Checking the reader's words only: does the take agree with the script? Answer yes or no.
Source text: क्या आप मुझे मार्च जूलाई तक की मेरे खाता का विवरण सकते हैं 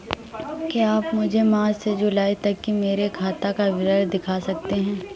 no